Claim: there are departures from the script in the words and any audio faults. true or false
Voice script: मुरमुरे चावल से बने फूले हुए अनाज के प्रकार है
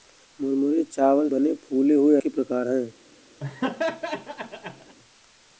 true